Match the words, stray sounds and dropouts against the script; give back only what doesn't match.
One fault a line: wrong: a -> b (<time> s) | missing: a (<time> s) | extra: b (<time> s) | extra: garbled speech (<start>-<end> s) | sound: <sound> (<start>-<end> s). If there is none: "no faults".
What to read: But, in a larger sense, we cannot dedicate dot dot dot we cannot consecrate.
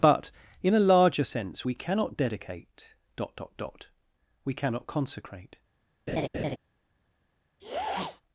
sound: laugh (6.1-6.6 s)
sound: sniff (7.6-8.2 s)